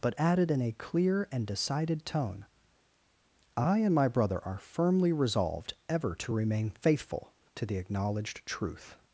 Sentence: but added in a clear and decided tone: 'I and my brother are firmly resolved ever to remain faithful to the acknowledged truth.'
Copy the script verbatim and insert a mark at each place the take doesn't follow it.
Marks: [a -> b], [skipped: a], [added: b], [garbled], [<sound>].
but added in a clear and decided tone: 'I and my brother are firmly resolved ever to remain faithful to the acknowledged truth.'